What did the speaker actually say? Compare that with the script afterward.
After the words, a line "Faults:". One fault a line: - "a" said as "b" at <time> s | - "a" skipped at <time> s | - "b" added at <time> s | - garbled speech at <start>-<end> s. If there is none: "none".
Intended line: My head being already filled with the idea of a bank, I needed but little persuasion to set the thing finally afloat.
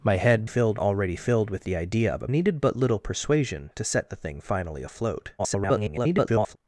My head filled already filled with the idea of a needed but little persuasion to set the thing finally afloat. [garbled]
Faults:
- "being" said as "filled" at 0.4 s
- "bank I" skipped at 2.3 s
- garbled speech at 5.4-6.6 s